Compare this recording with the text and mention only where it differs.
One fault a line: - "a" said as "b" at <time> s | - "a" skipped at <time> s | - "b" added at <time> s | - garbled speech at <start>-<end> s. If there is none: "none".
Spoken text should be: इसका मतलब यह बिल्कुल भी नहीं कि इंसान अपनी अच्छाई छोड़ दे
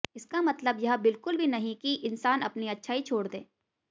none